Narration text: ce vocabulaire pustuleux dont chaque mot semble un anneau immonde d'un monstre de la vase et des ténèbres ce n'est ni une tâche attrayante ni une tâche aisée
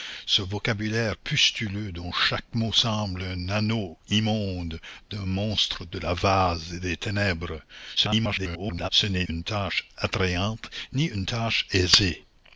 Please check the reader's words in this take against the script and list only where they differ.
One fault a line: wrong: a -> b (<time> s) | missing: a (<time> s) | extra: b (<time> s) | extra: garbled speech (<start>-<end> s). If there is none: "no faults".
extra: garbled speech (8.0-8.9 s)
missing: ni (9.3 s)